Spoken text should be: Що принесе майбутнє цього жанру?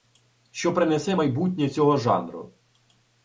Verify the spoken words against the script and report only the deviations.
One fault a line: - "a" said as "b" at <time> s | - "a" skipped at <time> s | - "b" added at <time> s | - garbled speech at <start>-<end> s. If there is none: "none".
none